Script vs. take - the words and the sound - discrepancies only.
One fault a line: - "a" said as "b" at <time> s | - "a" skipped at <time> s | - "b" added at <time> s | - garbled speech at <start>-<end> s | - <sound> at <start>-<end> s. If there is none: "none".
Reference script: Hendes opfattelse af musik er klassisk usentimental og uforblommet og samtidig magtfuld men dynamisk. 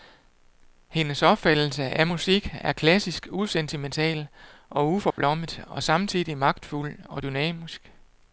- dropout at 5.1-5.2 s
- "men" said as "og" at 7.1 s